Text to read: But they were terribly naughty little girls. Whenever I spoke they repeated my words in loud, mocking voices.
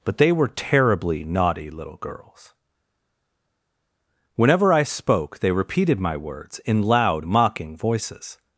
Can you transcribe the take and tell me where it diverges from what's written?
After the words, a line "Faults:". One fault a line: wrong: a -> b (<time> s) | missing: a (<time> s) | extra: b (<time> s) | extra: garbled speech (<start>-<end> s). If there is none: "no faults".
But they were terribly naughty little girls. Whenever I spoke they repeated my words in loud, mocking voices.
Faults:
no faults